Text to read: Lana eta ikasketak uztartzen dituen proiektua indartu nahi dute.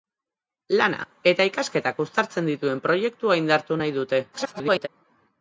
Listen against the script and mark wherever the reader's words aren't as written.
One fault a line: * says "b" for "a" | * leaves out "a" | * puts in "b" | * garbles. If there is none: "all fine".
* garbles